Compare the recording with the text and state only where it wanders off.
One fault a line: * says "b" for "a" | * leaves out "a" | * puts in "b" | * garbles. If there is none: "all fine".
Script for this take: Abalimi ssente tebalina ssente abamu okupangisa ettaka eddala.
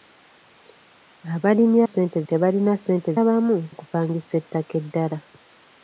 all fine